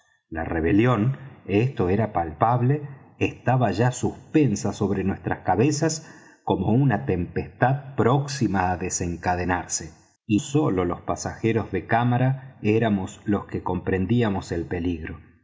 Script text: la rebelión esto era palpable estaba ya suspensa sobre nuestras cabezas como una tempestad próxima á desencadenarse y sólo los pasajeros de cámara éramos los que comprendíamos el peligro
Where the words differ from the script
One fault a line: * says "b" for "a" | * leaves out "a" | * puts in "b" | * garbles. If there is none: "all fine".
all fine